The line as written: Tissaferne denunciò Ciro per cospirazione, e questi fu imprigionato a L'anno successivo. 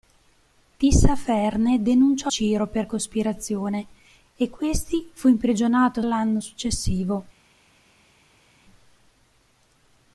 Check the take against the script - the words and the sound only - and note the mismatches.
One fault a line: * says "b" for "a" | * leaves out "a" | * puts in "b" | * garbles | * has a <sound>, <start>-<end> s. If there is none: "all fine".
all fine